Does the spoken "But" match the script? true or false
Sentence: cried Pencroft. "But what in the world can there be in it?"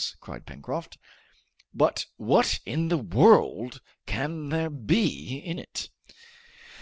true